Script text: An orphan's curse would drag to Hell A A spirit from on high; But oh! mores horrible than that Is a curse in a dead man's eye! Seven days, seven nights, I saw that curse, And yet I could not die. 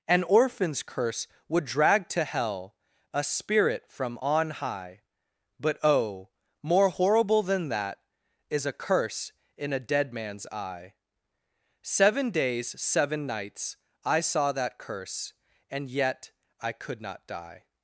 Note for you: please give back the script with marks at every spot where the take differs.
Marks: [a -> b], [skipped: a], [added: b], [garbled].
An orphan's curse would drag to Hell A [skipped: A] spirit from on high; But oh! [mores -> more] horrible than that Is a curse in a dead man's eye! Seven days, seven nights, I saw that curse, And yet I could not die.